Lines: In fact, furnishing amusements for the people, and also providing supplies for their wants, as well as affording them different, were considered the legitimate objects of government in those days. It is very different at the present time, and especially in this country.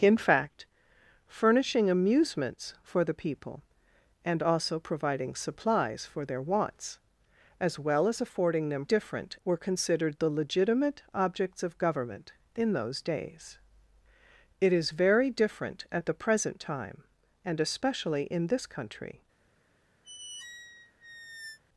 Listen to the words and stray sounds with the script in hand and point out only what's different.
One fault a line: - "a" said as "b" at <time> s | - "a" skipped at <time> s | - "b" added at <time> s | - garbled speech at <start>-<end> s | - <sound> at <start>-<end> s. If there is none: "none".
- squeak at 20.0-21.6 s